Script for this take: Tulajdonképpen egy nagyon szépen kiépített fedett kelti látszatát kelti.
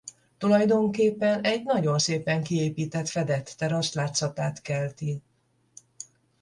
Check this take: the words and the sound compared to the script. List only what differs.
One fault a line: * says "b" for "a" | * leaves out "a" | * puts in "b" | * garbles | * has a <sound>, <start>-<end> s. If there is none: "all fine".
* says "terasz" for "kelti"